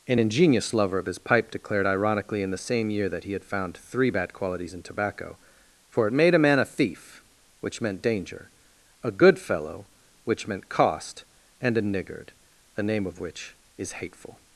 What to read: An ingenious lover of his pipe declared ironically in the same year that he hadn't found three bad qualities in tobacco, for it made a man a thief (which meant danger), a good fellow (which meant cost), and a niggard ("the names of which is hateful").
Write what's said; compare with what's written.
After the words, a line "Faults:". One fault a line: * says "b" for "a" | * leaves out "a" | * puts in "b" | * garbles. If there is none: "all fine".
An ingenious lover of his pipe declared ironically in the same year that he had found three bad qualities in tobacco, for it made a man a thief (which meant danger), a good fellow (which meant cost), and a niggard ("the name of which is hateful").
Faults:
* says "had" for "hadn't"
* says "name" for "names"